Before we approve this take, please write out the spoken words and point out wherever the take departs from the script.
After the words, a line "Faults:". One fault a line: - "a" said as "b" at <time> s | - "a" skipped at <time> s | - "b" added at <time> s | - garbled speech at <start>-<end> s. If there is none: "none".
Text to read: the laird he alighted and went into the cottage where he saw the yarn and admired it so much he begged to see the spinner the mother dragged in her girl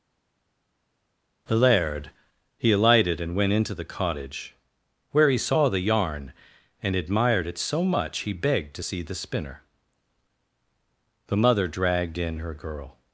the laird he alighted and went into the cottage where he saw the yarn and admired it so much he begged to see the spinner the mother dragged in her girl
Faults:
none